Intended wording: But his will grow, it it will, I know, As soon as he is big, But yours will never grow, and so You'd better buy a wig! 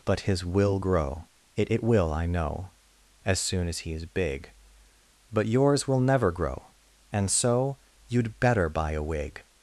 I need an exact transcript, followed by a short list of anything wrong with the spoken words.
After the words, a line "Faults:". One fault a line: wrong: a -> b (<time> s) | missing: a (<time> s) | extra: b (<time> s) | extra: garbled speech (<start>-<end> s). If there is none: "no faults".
But his will grow, it it will, I know, As soon as he is big, But yours will never grow, and so You'd better buy a wig!
Faults:
no faults